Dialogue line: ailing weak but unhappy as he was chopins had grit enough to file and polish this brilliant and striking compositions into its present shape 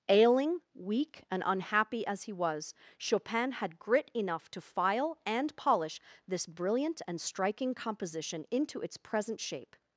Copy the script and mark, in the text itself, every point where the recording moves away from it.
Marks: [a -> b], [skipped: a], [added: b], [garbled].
ailing weak [but -> and] unhappy as he was [chopins -> chopin] had grit enough to file and polish this brilliant and striking [compositions -> composition] into its present shape